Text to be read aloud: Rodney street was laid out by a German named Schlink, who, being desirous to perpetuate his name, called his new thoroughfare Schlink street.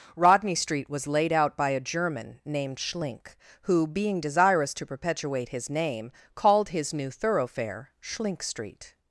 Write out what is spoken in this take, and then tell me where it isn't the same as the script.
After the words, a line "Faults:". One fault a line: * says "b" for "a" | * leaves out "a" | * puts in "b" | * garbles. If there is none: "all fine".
Rodney street was laid out by a German named Schlink, who, being desirous to perpetuate his name, called his new thoroughfare Schlink street.
Faults:
all fine